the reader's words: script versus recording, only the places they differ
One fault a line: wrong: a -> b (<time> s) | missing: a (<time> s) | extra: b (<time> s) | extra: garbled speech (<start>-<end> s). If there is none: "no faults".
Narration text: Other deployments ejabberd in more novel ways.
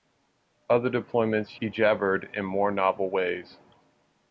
no faults